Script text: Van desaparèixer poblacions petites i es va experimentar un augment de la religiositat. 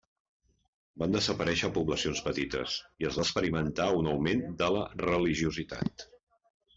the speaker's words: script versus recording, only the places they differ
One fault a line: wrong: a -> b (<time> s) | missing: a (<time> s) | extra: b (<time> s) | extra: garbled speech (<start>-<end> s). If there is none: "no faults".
no faults